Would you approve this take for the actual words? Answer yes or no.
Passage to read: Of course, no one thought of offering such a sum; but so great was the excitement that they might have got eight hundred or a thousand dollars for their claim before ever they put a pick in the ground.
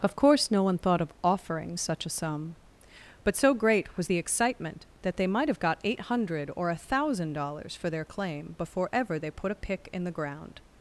yes